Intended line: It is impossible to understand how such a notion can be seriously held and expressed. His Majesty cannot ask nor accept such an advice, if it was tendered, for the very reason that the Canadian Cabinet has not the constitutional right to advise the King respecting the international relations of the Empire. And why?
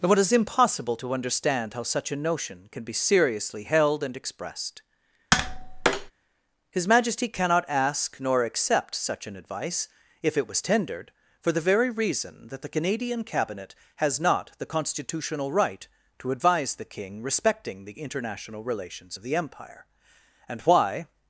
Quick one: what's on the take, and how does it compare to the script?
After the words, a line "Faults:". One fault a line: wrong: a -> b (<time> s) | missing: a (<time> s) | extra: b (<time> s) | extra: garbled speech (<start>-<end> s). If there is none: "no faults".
though It is impossible to understand how such a notion can be seriously held and expressed. His Majesty cannot ask nor accept such an advice, if it was tendered, for the very reason that the Canadian Cabinet has not the constitutional right to advise the King respecting the international relations of the Empire. And why?
Faults:
extra: though (0.0 s)